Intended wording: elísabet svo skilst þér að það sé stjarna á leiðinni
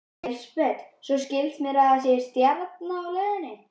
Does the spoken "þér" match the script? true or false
false